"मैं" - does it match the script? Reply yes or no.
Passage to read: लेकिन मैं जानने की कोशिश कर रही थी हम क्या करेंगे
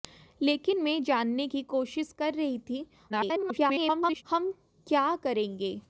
yes